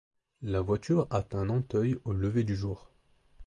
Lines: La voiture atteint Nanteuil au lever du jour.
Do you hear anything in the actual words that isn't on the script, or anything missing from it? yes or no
no